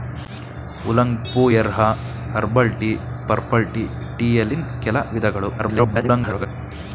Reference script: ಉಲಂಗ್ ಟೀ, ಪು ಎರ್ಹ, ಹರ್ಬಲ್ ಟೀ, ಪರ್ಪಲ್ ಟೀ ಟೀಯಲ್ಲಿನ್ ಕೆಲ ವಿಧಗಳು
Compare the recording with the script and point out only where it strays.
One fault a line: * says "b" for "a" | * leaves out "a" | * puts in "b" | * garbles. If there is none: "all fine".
* leaves out "ಟೀ"
* garbles